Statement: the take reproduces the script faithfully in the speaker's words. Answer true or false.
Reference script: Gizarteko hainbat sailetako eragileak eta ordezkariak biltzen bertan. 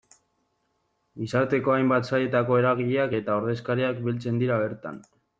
false